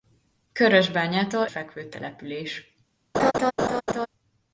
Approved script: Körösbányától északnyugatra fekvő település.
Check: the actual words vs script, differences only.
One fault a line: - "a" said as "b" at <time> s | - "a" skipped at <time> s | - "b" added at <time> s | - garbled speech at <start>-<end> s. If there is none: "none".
- "északnyugatra" skipped at 1.4 s